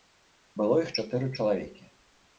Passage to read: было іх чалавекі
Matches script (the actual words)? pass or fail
fail